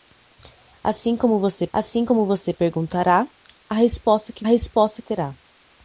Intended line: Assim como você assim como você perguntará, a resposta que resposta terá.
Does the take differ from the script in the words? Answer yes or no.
no